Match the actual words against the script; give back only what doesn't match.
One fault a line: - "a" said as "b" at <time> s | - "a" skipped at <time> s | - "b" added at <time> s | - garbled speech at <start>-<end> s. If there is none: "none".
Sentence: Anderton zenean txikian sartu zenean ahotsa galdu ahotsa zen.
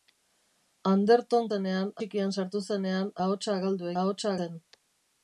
none